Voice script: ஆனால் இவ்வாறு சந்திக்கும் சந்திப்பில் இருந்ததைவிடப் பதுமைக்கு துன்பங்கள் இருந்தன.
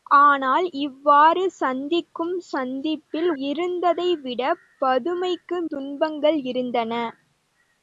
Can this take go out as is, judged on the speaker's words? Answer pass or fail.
pass